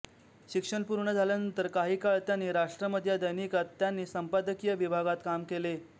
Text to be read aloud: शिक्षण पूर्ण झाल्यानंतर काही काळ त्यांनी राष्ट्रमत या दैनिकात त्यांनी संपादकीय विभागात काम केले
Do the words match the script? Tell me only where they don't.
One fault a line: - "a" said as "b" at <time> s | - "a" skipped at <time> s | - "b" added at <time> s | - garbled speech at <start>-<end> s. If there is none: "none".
none